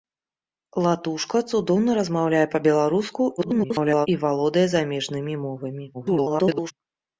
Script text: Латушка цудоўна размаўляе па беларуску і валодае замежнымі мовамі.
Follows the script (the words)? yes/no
no